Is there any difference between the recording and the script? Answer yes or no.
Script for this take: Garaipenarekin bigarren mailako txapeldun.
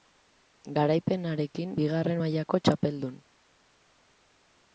no